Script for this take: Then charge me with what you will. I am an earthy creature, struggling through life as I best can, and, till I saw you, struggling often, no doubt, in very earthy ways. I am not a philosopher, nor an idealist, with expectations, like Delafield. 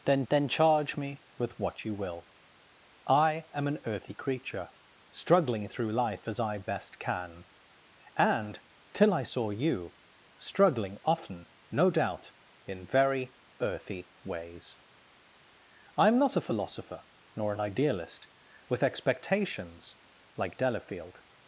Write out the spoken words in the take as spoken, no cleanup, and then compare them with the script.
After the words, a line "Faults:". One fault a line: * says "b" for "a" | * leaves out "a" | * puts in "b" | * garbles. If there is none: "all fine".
Then then charge me with what you will. I am an earthy creature, struggling through life as I best can, and, till I saw you, struggling often, no doubt, in very earthy ways. I am not a philosopher, nor an idealist, with expectations, like Delafield.
Faults:
* puts in "then"